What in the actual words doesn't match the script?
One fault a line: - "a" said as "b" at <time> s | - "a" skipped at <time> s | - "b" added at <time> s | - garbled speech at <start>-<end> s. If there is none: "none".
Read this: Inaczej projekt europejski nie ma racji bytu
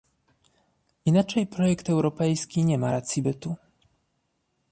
none